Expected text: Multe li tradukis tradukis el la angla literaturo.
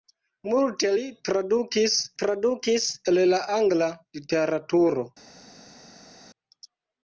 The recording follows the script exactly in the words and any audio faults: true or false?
true